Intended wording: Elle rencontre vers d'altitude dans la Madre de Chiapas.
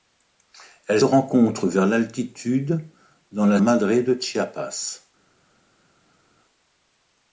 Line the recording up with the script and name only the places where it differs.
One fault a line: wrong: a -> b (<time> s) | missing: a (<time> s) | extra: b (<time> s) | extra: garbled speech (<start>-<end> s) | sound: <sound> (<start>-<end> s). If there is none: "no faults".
no faults